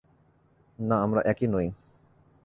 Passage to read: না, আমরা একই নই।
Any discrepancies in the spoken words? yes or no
no